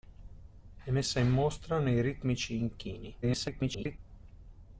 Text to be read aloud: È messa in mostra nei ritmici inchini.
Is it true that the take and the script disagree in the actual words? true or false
true